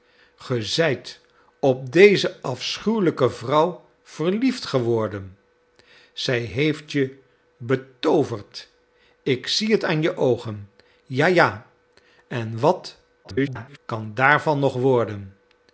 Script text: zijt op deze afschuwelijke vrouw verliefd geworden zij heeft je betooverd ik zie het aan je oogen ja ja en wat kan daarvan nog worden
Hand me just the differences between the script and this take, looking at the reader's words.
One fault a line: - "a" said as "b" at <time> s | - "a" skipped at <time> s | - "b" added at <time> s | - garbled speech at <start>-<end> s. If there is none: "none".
- garbled speech at 13.2-13.8 s